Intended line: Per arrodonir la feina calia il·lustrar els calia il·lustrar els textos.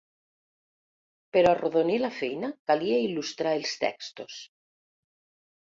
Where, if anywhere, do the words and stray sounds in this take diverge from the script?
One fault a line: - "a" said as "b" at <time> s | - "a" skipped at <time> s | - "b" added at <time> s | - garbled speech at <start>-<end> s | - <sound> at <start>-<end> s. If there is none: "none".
- "calia il·lustrar els" skipped at 3.8 s